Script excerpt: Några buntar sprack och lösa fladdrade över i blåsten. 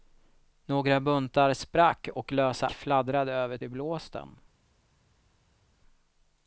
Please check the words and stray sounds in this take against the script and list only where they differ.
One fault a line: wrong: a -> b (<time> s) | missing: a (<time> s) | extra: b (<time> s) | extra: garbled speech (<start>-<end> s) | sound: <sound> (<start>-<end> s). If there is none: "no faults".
no faults